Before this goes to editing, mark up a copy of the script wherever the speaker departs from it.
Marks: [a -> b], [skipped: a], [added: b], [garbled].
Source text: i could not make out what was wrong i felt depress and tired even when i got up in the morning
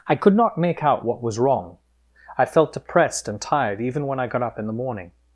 i could not make out what was wrong i felt [depress -> depressed] and tired even when i got up in the morning